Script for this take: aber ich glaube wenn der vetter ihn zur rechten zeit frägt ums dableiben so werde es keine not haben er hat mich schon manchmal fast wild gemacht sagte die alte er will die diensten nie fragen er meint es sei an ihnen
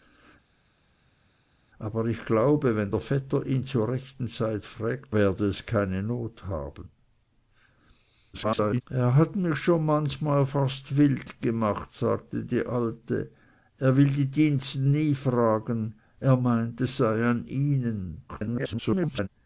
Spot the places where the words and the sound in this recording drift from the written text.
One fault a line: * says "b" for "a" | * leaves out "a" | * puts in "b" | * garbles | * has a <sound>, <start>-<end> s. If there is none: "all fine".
* leaves out "ums dableiben so"
* garbles
* garbles